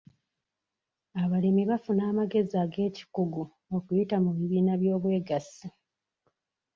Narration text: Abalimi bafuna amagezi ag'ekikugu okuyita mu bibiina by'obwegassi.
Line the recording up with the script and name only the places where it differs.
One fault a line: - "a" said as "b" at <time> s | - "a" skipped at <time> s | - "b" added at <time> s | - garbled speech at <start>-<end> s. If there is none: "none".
none